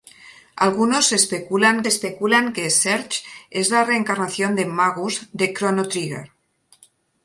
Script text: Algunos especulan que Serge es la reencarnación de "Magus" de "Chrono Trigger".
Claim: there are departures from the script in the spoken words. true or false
true